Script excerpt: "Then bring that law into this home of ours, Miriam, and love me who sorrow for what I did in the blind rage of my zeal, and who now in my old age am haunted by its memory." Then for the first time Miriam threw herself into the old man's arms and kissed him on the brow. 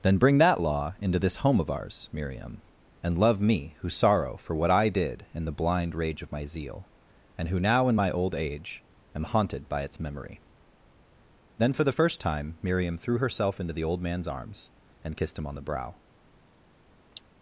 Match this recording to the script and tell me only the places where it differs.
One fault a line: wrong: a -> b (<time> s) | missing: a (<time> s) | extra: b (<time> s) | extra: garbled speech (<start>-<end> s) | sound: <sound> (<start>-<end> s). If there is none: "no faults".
sound: cough (17.1-17.2 s)